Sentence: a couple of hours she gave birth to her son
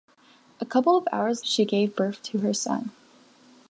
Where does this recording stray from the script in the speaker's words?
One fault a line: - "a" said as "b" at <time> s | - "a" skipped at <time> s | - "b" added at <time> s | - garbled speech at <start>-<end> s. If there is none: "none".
none